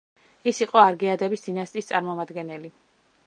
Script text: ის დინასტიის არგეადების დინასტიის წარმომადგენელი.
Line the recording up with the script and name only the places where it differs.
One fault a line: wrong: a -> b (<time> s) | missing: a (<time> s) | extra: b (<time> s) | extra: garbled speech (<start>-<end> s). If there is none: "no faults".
wrong: დინასტიის -> იყო (0.7 s)